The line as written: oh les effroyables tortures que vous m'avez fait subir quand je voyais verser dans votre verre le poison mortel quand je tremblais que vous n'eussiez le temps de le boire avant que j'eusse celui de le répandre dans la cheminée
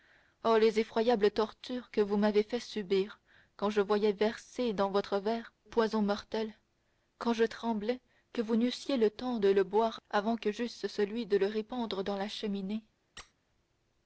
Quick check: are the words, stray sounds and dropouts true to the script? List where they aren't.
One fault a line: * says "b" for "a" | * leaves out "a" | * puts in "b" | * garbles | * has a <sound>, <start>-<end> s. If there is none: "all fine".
* leaves out "le"
* has a squeak, 13.2-13.3 s